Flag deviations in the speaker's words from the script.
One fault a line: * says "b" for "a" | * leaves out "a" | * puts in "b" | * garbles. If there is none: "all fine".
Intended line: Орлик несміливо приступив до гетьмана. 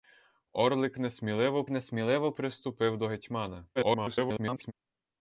* puts in "несміливо"
* garbles